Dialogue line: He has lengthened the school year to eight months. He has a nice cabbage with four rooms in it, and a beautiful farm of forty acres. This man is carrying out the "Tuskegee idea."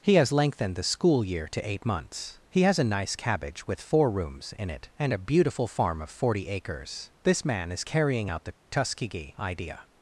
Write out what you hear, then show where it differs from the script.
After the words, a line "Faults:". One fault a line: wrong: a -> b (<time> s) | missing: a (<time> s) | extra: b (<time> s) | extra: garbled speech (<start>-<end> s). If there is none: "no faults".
He has lengthened the school year to eight months. He has a nice cabbage with four rooms in it, and a beautiful farm of forty acres. This man is carrying out the "Tuskegee idea."
Faults:
no faults